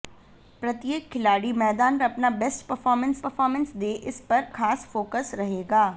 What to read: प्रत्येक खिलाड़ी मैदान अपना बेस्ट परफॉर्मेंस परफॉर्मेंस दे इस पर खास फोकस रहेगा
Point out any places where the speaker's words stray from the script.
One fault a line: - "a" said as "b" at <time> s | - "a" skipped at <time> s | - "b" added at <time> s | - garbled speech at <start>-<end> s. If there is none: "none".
none